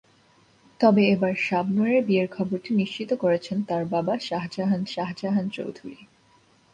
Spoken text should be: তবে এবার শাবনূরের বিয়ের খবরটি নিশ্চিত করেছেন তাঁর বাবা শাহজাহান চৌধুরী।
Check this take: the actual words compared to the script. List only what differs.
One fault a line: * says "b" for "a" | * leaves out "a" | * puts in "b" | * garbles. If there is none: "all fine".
* puts in "শাহজাহান"